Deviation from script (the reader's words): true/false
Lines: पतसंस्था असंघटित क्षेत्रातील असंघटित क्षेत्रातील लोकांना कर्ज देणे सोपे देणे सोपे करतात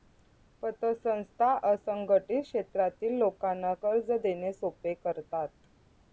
true